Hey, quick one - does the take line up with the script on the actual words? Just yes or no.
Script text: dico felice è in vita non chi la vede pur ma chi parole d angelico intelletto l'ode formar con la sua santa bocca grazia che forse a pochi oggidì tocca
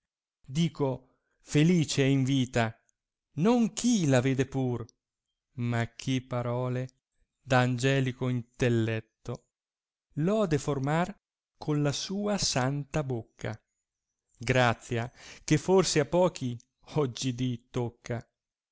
yes